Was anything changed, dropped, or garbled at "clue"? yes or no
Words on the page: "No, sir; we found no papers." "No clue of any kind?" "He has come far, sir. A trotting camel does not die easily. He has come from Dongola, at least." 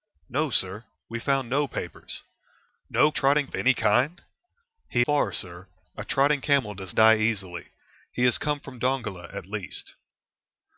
yes